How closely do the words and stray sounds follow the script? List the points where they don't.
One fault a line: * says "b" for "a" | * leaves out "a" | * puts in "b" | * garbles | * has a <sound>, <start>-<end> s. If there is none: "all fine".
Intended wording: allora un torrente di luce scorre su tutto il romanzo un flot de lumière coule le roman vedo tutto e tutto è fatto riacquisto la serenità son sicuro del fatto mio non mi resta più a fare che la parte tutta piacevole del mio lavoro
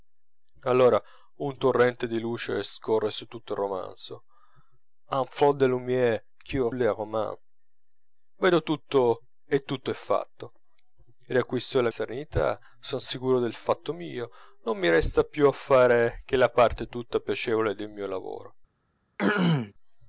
* has a throat clearing, 19.2-19.7 s